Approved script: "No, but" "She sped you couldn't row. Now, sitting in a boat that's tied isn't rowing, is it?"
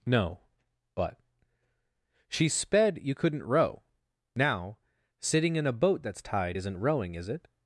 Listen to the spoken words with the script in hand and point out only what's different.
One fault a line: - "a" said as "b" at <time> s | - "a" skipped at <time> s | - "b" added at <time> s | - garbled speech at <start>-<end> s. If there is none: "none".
none